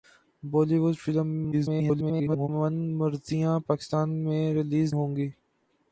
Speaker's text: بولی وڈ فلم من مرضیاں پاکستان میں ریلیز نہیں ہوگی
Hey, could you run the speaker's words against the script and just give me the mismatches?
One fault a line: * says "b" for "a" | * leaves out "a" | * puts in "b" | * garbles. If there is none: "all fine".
* garbles
* leaves out "نہیں"